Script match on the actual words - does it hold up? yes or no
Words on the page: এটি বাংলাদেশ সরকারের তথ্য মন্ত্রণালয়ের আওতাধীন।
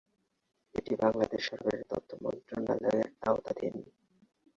yes